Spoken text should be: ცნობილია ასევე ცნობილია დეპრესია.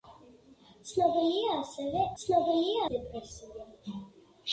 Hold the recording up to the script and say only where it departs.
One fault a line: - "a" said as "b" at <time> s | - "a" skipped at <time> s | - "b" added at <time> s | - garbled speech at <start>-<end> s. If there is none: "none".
none